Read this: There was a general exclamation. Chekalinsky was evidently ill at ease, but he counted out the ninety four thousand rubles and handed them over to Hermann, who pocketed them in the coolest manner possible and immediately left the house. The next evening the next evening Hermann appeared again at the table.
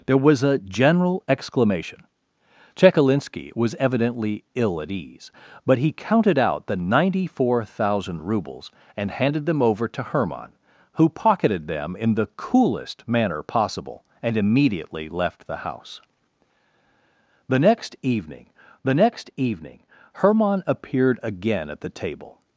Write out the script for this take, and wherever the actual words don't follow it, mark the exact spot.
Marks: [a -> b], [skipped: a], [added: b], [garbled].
There was a general exclamation. Chekalinsky was evidently ill at ease, but he counted out the ninety four thousand rubles and handed them over to Hermann, who pocketed them in the coolest manner possible and immediately left the house. The next evening the next evening Hermann appeared again at the table.